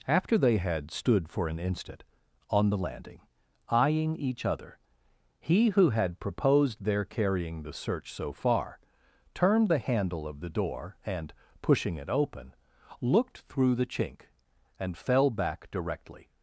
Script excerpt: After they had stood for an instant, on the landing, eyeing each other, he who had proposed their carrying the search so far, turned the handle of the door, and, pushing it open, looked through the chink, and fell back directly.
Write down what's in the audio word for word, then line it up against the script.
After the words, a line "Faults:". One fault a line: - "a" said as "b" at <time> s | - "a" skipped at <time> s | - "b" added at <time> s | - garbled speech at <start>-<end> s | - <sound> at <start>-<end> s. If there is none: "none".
After they had stood for an instant, on the landing, eyeing each other, he who had proposed their carrying the search so far, turned the handle of the door, and, pushing it open, looked through the chink, and fell back directly.
Faults:
none